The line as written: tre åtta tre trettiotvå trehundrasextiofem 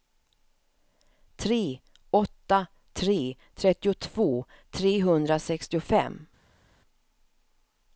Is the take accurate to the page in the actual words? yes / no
yes